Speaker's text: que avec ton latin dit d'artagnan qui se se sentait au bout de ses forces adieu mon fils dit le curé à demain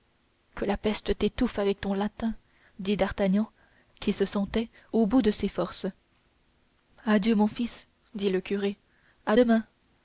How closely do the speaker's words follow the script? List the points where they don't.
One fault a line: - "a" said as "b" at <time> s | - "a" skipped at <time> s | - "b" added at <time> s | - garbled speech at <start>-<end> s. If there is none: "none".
- "la peste t'étouffe" added at 0.7 s
- "se" skipped at 4.2 s